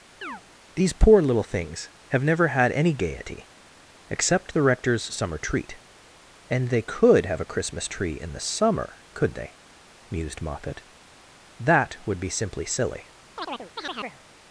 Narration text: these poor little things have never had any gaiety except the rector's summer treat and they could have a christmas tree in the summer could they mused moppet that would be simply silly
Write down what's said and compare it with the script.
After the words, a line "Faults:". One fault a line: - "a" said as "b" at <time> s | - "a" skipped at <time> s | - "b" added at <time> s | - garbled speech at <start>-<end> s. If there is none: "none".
these poor little things have never had any gaiety except the rector's summer treat and they could have a christmas tree in the summer could they mused moppet that would be simply silly
Faults:
none